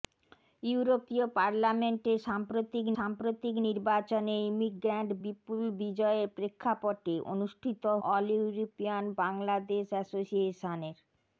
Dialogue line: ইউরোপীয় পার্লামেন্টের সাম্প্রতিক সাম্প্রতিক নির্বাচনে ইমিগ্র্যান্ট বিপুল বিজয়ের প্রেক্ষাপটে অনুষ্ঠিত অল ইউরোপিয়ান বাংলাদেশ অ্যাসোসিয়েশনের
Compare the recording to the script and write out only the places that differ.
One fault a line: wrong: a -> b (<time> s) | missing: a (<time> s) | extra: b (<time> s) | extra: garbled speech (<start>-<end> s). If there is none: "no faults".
no faults